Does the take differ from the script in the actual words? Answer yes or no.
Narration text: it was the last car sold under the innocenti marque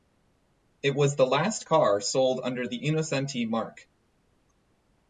no